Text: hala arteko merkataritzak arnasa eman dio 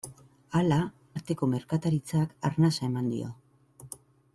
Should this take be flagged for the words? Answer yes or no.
no